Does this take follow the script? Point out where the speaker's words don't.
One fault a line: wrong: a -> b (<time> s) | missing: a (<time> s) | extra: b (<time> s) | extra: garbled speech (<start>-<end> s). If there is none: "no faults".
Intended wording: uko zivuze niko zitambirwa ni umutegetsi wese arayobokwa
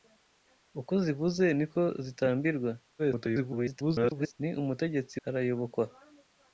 extra: garbled speech (3.0-4.3 s)
missing: wese (5.2 s)